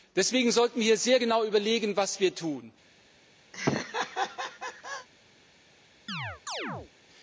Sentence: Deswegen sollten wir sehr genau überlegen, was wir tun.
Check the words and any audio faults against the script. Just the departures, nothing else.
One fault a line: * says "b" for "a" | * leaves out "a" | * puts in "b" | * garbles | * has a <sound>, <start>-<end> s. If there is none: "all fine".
* has a laugh, 3.5-5.1 s
* has a chirp, 6.1-6.9 s